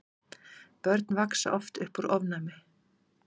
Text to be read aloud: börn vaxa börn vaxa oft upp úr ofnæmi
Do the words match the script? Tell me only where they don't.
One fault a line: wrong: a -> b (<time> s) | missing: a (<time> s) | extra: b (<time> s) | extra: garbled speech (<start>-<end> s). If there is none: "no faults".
missing: börn vaxa (1.5 s)